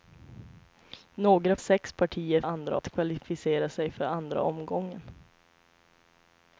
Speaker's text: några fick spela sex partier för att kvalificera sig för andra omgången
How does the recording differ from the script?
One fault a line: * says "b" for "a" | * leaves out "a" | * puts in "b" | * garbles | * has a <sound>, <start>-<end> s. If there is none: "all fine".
* leaves out "fick spela"
* says "andra" for "för"